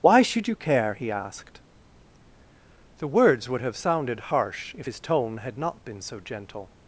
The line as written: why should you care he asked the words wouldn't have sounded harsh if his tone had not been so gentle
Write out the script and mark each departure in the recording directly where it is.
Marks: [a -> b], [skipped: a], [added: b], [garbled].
why should you care he asked the words [wouldn't -> would] have sounded harsh if his tone had not been so gentle